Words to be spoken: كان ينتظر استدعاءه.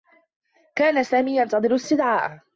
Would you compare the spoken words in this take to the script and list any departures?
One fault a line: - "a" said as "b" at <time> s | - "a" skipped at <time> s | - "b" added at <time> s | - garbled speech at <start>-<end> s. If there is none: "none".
- "سامي" added at 1.0 s